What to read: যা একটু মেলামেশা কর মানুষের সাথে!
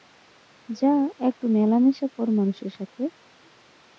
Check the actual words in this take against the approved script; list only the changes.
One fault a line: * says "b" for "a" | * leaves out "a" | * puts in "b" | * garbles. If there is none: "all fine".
all fine